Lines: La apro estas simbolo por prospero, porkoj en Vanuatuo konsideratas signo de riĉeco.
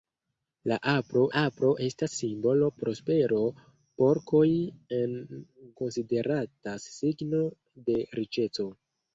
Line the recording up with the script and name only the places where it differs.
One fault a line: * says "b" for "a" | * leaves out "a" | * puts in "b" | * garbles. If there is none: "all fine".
* puts in "apro"
* leaves out "por"
* leaves out "Vanuatuo"